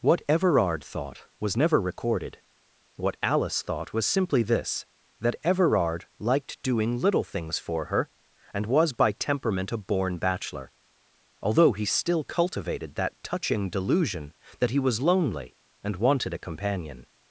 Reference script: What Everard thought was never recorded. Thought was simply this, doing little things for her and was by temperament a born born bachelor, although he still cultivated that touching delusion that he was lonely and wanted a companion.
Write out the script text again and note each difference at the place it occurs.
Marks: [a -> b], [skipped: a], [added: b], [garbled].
What Everard thought was never recorded. [added: What Alice] Thought was simply this, [added: that Everard liked] doing little things for her and was by temperament a born [skipped: born] bachelor, although he still cultivated that touching delusion that he was lonely and wanted a companion.